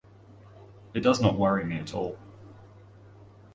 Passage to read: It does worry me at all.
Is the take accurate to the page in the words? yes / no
no